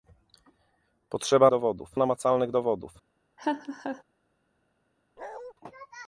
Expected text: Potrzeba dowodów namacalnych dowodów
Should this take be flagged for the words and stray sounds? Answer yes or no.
yes